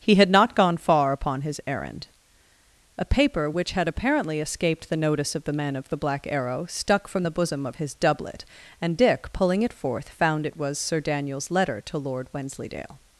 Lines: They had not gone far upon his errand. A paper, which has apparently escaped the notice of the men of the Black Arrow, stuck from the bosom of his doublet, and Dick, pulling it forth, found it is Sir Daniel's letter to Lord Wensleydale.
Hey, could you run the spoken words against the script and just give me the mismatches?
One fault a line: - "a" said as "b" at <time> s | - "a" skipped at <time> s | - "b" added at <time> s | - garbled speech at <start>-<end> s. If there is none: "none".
- "They" said as "He" at 0.0 s
- "has" said as "had" at 3.7 s
- "is" said as "was" at 10.6 s